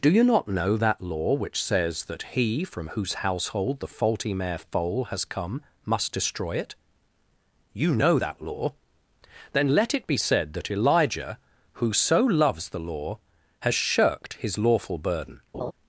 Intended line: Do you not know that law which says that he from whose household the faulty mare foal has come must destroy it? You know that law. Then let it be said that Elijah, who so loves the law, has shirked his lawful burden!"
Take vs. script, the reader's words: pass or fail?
pass